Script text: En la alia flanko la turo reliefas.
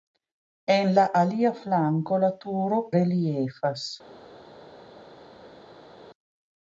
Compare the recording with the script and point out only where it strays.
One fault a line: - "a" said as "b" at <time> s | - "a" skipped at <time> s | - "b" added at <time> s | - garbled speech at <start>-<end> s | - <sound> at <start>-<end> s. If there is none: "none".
none